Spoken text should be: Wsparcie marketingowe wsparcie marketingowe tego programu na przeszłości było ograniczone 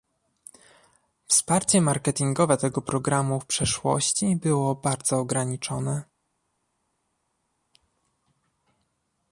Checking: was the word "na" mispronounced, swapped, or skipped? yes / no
yes